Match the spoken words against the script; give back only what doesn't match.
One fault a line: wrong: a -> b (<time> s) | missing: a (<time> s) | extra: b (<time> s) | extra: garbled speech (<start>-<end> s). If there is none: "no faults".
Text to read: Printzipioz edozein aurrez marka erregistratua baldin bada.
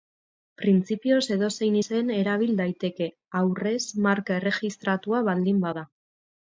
extra: izen erabil daiteke (1.8 s)